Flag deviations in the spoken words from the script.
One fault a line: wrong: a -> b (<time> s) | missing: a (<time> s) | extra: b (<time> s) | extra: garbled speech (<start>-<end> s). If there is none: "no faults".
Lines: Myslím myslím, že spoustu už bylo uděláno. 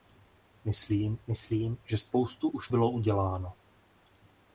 no faults